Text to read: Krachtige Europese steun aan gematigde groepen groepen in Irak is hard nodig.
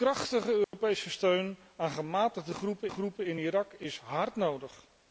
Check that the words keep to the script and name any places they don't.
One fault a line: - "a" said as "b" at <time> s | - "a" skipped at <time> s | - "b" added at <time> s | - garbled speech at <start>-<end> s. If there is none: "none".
none